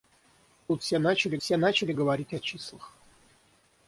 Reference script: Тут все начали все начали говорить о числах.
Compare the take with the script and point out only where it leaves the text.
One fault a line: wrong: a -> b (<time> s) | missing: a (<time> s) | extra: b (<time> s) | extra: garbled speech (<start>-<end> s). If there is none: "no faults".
no faults